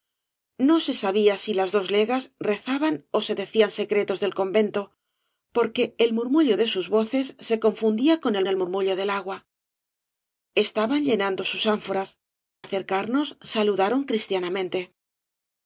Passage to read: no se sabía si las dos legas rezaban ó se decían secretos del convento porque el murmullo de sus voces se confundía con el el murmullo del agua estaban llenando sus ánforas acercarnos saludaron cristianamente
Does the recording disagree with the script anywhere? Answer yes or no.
no